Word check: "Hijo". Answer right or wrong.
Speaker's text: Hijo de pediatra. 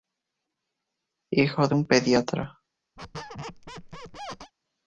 right